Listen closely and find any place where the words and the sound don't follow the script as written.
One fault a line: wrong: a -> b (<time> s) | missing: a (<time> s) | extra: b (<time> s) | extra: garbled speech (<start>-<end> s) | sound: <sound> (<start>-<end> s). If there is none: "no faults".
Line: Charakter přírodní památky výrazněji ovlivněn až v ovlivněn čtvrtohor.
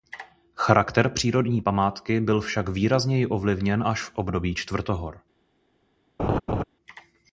extra: byl však (2.2 s)
wrong: ovlivněn -> období (4.1 s)
sound: laugh (6.2-6.6 s)